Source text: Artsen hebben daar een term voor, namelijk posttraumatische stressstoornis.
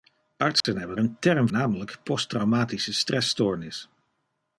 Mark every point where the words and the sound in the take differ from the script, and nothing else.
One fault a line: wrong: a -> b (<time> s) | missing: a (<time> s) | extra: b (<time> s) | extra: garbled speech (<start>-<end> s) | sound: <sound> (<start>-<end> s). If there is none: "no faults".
sound: dropout (0.6-0.6 s)
missing: daar (1.0 s)
missing: voor (1.5 s)